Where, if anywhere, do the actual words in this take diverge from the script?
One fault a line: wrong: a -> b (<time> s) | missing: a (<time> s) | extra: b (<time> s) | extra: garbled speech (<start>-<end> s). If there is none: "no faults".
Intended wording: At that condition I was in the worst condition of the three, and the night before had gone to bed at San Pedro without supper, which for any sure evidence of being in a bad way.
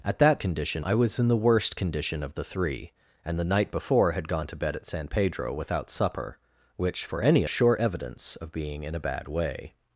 no faults